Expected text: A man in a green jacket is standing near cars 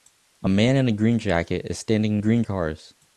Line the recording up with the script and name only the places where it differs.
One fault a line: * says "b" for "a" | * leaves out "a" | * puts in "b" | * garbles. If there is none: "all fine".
* says "green" for "near"